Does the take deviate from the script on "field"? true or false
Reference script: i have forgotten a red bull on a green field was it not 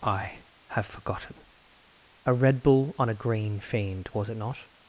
true